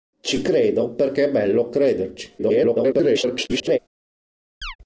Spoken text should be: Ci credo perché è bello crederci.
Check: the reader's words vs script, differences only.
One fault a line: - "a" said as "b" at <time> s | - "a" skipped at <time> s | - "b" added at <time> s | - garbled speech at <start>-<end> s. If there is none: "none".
- garbled speech at 2.4-3.8 s